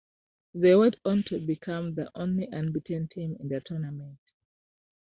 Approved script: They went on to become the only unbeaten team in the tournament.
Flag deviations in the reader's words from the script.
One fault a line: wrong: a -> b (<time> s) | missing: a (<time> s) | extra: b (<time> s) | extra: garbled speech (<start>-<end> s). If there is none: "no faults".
no faults